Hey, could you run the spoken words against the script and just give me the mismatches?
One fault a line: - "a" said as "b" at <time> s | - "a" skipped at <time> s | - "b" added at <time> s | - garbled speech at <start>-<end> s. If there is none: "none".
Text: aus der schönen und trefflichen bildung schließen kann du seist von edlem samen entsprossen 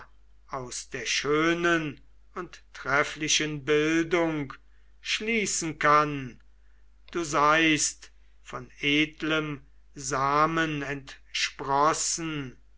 none